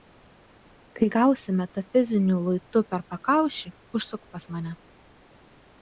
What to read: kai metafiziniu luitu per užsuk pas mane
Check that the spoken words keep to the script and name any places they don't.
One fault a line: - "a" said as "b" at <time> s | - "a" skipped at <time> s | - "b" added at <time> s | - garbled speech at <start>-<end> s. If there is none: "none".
- "gausi" added at 1.1 s
- "pakaušį" added at 3.1 s